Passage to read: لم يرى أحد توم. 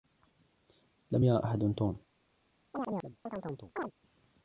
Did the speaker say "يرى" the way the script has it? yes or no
yes